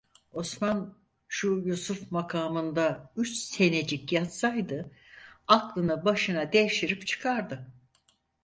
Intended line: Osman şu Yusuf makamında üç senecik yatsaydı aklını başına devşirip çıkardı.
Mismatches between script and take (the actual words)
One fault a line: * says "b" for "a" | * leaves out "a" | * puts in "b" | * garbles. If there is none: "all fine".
all fine